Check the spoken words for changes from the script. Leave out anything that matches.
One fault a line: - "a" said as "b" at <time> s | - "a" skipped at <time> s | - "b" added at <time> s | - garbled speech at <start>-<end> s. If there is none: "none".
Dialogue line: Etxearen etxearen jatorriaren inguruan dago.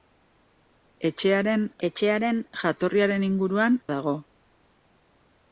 none